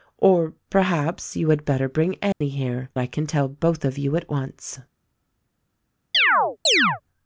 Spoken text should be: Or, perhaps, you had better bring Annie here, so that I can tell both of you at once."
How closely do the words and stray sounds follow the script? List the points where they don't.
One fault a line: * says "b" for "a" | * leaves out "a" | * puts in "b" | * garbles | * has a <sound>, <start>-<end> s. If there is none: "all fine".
* has a dropout, 2.3-2.4 s
* leaves out "so that"
* has a chirp, 6.1-7.0 s